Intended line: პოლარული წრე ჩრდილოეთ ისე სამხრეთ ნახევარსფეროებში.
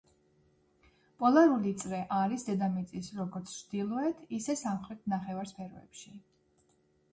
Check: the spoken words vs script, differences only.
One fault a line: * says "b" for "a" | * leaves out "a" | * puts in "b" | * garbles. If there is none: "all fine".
* puts in "არის დედამიწის როგორც"